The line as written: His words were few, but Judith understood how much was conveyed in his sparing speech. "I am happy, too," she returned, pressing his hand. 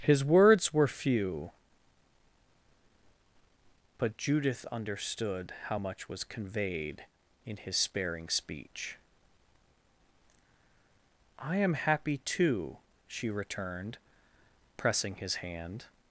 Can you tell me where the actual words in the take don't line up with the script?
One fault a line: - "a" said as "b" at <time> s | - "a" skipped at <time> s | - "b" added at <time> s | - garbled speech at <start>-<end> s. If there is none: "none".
none